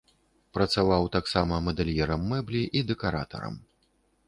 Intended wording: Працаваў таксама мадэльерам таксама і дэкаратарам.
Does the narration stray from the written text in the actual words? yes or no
yes